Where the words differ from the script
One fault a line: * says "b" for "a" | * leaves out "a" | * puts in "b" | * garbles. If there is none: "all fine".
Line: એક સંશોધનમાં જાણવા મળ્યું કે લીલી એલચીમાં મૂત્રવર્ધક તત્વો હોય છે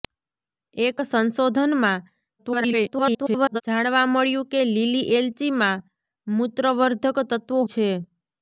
* garbles
* leaves out "હોય"